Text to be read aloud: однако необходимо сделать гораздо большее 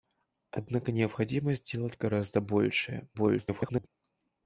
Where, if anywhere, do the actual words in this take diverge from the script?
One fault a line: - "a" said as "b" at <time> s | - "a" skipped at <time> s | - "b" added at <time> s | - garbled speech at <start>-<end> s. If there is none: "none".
- garbled speech at 3.1-3.9 s